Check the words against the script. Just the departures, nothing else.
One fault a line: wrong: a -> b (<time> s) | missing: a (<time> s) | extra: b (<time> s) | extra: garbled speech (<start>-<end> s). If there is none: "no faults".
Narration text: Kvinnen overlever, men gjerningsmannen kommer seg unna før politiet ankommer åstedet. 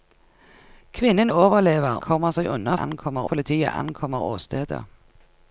missing: men gjerningsmannen (2.0 s)
wrong: før -> ankommer (2.8 s)